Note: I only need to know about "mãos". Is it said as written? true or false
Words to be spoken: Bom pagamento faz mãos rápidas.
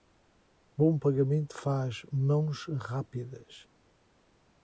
true